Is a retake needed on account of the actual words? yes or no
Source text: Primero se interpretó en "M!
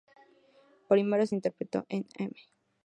no